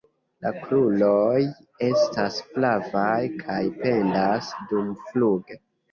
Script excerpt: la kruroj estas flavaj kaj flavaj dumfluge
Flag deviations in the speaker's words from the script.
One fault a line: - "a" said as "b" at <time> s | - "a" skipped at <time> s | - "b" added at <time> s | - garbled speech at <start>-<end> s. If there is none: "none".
- "flavaj" said as "pendas" at 3.8 s